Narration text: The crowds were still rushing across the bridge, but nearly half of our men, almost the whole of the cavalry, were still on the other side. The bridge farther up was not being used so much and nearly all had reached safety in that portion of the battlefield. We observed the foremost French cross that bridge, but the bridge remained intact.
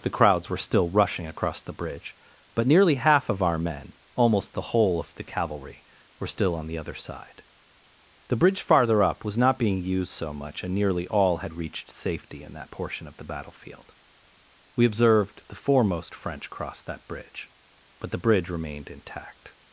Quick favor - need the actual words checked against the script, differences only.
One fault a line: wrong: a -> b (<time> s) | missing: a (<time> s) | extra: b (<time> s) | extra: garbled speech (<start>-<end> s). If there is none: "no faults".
no faults